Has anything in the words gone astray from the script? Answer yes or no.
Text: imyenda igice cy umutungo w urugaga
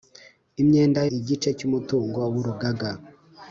no